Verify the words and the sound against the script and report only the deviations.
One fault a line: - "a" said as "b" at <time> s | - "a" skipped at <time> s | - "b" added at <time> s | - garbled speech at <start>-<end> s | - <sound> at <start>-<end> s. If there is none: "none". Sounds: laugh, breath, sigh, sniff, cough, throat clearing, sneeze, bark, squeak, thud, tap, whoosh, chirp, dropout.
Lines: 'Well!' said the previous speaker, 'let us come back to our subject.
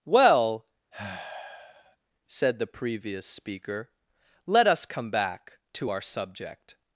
- sigh at 0.9-2.0 s